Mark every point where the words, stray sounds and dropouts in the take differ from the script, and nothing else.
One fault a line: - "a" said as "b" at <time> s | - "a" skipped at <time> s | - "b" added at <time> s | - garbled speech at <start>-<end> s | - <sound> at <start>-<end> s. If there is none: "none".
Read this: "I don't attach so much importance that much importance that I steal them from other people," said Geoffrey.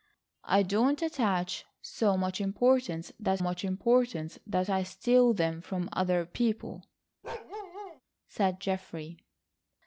- bark at 7.2-8.0 s